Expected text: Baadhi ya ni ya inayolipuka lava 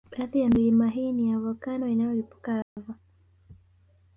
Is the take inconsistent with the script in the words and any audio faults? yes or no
yes